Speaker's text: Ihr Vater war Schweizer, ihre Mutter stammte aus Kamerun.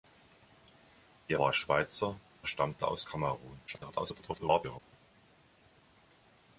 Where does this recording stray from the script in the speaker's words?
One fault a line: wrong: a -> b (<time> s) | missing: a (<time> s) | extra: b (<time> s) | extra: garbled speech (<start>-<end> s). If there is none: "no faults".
missing: Vater (1.4 s)
missing: ihre Mutter (2.2 s)
extra: garbled speech (3.7-4.8 s)